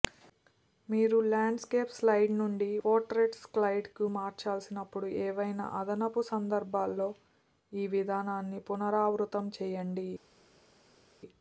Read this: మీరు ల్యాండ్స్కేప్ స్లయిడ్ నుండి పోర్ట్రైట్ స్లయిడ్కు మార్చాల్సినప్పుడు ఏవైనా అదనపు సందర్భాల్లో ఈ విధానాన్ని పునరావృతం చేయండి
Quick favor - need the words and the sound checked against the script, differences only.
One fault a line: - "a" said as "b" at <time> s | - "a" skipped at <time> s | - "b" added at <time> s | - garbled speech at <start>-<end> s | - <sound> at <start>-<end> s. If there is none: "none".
none